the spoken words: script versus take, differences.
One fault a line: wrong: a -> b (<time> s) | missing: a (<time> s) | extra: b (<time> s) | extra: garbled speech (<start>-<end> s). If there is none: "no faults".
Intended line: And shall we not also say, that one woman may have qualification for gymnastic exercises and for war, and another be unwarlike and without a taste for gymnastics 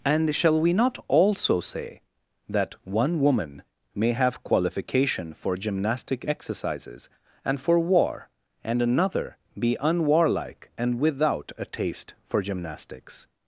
no faults